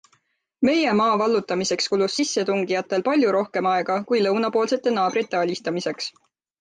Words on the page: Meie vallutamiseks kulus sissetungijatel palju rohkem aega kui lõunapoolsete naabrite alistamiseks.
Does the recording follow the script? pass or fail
fail